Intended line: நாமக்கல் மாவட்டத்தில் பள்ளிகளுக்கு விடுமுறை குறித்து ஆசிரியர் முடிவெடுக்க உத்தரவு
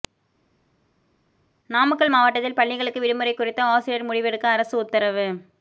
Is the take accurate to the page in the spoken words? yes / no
no